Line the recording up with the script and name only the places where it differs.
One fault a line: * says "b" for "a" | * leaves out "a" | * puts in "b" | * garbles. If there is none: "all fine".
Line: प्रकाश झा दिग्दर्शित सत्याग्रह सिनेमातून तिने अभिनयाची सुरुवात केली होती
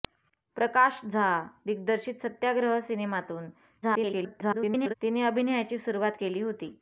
* garbles